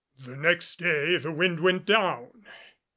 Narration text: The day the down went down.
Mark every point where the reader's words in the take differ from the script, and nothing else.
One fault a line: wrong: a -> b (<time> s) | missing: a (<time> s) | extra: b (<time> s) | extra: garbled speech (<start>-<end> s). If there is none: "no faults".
extra: next (0.3 s)
wrong: down -> wind (1.3 s)